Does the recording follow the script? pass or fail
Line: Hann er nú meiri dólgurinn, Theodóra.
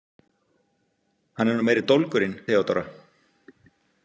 pass